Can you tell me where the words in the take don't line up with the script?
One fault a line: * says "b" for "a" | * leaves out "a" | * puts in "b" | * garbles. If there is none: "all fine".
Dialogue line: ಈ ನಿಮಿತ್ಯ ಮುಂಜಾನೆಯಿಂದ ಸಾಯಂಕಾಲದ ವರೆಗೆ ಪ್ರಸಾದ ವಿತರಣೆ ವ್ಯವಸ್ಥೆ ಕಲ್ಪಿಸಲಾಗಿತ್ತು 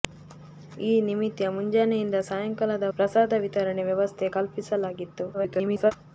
* leaves out "ವರೆಗೆ"
* garbles